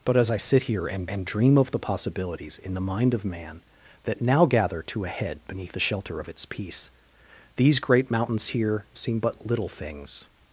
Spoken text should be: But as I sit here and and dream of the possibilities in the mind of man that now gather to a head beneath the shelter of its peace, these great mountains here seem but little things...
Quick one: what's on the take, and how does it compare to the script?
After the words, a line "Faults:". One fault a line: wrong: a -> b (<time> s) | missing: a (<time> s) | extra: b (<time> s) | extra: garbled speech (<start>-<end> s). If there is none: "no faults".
But as I sit here and and dream of the possibilities in the mind of man that now gather to a head beneath the shelter of its peace, these great mountains here seem but little things...
Faults:
no faults